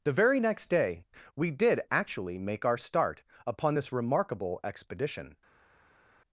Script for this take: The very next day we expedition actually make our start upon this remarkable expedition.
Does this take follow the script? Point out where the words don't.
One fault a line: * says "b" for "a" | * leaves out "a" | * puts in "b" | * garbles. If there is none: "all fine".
* says "did" for "expedition"